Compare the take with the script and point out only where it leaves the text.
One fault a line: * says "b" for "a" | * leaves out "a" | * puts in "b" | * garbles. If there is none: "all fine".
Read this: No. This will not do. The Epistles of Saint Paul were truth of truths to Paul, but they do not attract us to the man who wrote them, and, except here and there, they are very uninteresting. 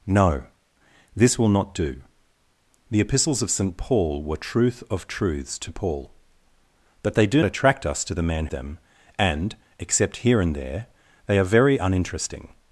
* leaves out "not"
* leaves out "who wrote"